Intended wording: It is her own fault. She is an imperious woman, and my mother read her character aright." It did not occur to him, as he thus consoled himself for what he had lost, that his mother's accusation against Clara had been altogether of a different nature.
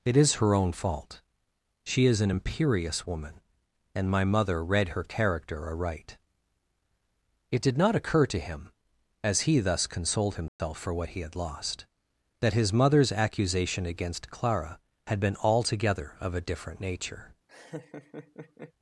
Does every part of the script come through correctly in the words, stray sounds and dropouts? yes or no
no